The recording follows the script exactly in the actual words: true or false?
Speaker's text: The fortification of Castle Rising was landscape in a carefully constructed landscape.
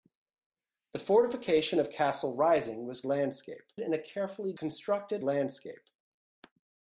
true